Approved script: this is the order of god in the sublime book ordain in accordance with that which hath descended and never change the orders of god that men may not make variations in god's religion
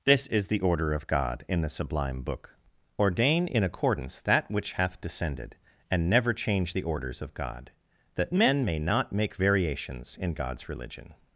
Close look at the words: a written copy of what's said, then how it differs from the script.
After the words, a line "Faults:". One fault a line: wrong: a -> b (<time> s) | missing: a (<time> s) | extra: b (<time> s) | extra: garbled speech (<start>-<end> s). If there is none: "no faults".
this is the order of god in the sublime book ordain in accordance that which hath descended and never change the orders of god that men may not make variations in god's religion
Faults:
missing: with (4.2 s)